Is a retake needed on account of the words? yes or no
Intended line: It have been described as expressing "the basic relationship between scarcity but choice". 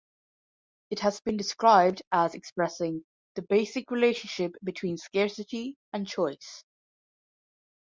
yes